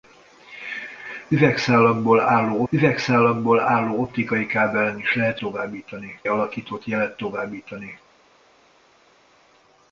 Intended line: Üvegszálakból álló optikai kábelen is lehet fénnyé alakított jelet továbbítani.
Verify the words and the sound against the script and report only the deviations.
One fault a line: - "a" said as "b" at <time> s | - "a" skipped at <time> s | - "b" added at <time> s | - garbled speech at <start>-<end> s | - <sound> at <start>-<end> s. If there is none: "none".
- "üvegszálakból álló" added at 2.7 s
- "fénnyé" said as "továbbítani" at 5.4 s